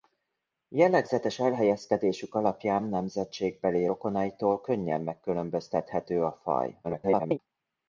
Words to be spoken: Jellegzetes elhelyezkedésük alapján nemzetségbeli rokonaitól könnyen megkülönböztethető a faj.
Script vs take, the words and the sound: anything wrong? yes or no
yes